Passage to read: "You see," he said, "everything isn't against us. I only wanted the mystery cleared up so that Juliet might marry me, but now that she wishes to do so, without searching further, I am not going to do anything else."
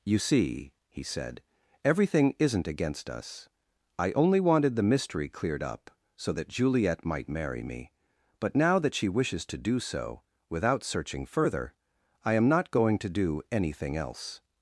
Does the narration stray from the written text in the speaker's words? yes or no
no